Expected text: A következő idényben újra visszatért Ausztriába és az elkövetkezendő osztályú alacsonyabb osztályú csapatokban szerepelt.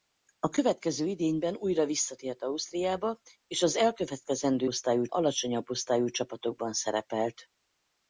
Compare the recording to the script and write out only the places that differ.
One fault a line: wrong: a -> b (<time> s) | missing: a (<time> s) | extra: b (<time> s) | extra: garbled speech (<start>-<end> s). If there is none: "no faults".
no faults